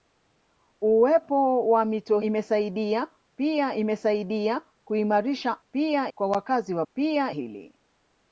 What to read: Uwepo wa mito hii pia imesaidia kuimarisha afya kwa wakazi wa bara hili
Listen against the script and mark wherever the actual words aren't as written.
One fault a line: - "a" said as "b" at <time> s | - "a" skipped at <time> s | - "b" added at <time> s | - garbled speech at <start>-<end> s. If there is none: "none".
- "hii" said as "imesaidia" at 2.2 s
- "afya" said as "pia" at 5.7 s
- "bara" said as "pia" at 6.9 s